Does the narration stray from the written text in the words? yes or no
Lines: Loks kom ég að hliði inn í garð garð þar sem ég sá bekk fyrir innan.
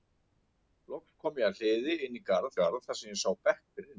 no